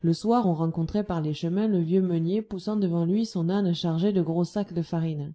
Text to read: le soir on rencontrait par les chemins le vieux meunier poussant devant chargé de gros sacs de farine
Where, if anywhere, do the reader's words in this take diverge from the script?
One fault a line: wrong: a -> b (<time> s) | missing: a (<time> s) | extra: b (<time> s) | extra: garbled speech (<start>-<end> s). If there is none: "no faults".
extra: lui son âne (3.0 s)